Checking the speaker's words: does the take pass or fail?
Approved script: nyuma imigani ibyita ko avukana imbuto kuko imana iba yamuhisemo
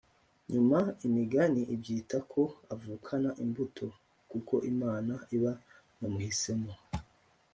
pass